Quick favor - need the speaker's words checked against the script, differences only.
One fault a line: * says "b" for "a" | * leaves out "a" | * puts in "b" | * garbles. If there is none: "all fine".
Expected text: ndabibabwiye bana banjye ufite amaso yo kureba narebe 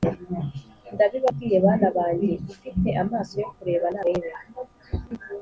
all fine